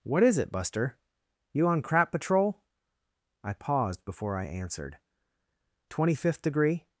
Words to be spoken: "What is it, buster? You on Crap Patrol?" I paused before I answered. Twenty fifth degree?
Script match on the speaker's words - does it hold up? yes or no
yes